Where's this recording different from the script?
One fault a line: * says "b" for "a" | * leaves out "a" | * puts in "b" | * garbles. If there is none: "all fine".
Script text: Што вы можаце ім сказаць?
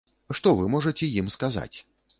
all fine